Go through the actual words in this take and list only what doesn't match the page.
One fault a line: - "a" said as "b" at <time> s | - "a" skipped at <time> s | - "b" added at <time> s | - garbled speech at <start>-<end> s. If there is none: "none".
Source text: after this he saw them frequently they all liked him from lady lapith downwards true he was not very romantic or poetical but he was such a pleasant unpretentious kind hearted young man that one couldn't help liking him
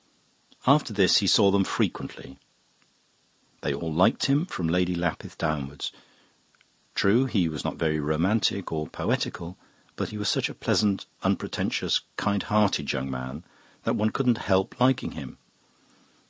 none